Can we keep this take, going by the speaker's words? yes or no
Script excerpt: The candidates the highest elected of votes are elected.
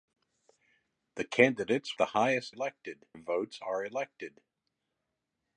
yes